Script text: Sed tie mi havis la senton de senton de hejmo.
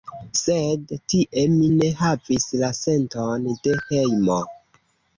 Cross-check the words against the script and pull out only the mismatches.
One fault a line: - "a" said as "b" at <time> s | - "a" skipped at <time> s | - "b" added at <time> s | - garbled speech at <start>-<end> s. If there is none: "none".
- "ne" added at 1.7 s
- "senton de" skipped at 3.8 s